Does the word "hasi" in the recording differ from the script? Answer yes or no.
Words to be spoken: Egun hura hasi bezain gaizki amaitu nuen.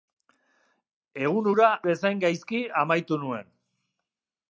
yes